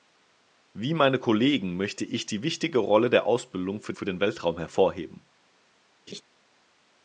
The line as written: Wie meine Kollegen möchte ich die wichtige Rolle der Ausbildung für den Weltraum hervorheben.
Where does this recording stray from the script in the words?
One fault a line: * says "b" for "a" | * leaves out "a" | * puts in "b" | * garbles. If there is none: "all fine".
* puts in "für"